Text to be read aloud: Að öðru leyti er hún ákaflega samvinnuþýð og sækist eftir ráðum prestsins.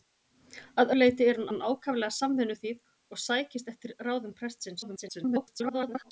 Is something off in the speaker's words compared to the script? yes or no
yes